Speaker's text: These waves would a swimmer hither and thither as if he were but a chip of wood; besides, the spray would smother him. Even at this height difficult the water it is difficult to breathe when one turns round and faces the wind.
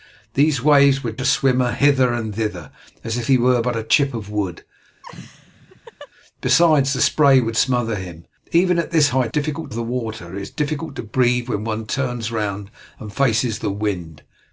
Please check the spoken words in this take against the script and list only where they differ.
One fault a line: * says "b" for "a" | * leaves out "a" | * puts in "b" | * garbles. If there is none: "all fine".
all fine